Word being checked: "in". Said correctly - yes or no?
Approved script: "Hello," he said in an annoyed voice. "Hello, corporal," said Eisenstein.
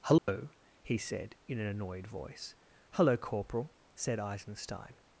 yes